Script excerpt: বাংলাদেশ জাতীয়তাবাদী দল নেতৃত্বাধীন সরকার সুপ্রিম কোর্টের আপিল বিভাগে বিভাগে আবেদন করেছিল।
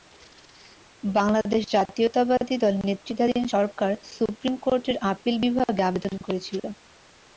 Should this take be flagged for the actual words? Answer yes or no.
yes